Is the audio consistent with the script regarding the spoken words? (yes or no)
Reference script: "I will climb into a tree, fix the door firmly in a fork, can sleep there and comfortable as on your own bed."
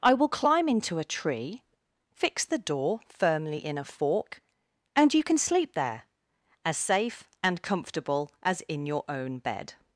no